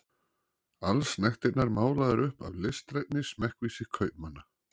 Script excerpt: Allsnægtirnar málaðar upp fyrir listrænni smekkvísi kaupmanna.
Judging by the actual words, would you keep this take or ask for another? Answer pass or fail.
fail